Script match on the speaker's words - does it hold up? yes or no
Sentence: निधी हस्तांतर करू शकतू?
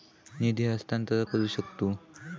yes